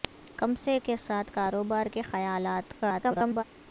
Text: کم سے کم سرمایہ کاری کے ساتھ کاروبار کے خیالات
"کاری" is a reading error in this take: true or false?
true